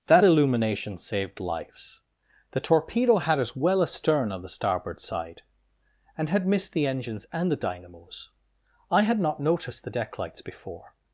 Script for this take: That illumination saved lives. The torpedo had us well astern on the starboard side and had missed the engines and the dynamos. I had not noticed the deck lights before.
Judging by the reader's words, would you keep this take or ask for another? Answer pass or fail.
pass